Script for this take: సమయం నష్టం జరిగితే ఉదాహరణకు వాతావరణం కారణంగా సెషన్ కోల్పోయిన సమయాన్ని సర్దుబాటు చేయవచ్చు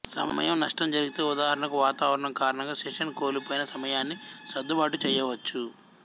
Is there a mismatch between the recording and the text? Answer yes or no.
no